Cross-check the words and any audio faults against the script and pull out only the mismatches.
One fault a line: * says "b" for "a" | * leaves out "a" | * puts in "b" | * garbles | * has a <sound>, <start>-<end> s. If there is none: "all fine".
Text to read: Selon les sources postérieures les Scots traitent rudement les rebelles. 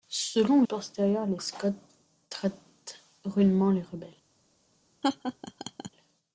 * leaves out "les sources"
* has a laugh, 5.0-5.9 s